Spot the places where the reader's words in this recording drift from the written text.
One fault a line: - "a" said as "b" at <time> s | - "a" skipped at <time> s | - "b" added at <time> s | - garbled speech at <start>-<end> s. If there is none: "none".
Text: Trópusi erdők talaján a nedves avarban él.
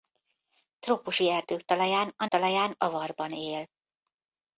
- "nedves" said as "talaján" at 2.2 s